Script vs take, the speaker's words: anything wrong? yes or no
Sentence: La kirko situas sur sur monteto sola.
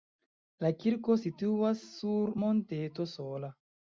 yes